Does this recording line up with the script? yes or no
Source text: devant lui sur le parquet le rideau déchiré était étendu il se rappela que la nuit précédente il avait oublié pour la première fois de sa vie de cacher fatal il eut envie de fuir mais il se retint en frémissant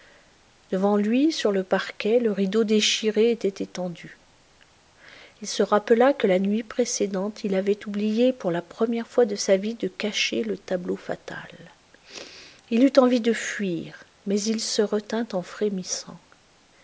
no